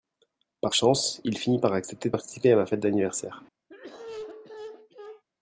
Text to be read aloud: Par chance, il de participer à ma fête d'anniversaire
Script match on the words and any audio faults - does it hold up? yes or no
no